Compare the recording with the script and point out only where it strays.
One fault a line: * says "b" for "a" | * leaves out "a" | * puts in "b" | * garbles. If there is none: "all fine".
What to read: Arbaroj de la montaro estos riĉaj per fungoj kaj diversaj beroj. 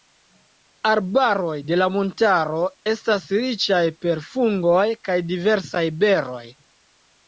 * says "estas" for "estos"